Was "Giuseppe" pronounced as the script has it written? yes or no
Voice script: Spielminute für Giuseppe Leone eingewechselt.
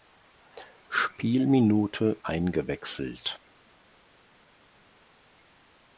no